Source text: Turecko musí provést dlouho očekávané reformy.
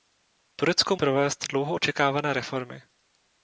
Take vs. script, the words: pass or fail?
fail